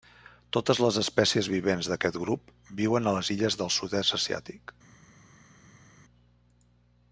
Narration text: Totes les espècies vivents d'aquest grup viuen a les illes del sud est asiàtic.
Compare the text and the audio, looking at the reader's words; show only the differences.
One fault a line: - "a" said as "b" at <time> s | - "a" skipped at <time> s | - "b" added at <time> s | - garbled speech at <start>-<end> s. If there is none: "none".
none